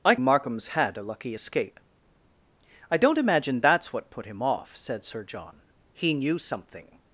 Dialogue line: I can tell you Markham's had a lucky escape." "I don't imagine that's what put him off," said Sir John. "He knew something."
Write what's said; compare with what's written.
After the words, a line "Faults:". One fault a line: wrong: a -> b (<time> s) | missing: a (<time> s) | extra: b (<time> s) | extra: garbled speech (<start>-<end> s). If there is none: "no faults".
I Markham's had a lucky escape." "I don't imagine that's what put him off," said Sir John. "He knew something."
Faults:
missing: can tell you (0.1 s)